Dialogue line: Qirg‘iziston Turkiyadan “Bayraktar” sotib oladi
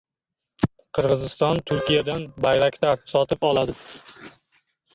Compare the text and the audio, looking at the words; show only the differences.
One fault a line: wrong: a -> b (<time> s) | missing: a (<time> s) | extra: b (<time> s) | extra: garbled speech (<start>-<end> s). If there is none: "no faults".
no faults